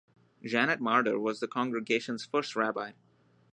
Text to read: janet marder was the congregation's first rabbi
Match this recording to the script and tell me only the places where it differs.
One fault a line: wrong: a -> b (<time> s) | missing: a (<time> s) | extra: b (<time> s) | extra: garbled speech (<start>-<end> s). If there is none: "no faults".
no faults